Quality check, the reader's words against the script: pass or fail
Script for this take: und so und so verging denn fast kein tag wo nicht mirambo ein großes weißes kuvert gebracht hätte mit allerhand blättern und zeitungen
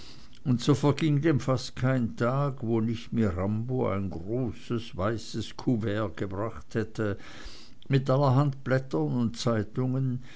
fail